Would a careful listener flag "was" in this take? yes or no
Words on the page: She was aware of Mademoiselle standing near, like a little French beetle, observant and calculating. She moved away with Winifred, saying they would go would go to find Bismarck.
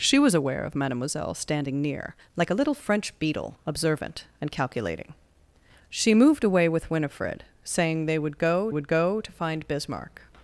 no